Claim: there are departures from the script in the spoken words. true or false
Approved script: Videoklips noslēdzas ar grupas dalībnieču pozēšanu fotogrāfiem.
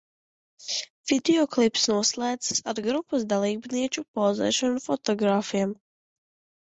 false